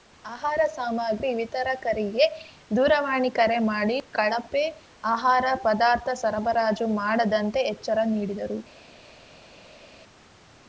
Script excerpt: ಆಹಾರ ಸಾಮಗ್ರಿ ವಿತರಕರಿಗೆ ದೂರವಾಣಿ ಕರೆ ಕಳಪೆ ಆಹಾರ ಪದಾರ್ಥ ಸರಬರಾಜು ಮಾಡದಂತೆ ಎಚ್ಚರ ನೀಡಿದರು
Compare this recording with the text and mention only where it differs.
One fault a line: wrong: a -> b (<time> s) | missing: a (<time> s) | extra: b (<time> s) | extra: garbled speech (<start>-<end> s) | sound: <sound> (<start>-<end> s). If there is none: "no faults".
extra: ಮಾಡಿ (3.7 s)